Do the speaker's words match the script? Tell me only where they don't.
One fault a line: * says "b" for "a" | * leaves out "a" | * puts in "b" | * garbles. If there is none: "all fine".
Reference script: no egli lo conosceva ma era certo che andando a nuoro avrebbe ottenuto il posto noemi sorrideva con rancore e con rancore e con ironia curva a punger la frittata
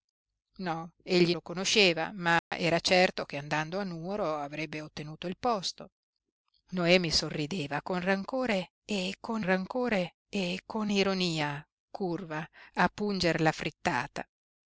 all fine